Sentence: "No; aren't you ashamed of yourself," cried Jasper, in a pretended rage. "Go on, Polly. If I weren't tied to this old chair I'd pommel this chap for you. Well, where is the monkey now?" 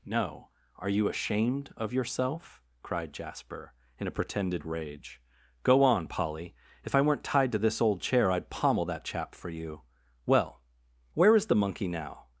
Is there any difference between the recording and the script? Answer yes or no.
yes